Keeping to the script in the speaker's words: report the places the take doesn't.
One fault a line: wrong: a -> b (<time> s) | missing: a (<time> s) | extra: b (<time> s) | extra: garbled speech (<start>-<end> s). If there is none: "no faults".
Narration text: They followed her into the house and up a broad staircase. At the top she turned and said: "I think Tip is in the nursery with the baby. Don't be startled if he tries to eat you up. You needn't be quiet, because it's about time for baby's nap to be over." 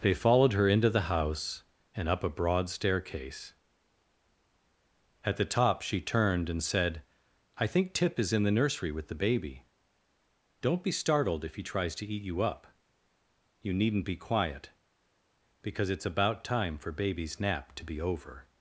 no faults